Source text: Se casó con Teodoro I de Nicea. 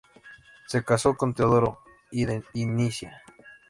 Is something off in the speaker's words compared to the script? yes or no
no